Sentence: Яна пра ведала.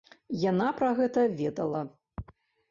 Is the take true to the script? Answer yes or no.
no